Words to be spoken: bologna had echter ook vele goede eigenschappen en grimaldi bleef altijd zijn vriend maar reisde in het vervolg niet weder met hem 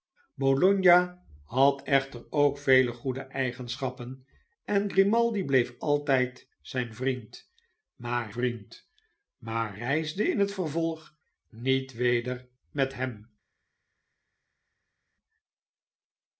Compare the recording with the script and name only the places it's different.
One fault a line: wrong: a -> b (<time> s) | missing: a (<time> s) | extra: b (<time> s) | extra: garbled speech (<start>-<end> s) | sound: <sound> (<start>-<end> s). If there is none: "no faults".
extra: vriend maar (8.3 s)